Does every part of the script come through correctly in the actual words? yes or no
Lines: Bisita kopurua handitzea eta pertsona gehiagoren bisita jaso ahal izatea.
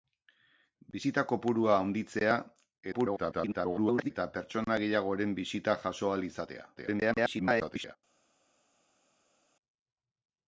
no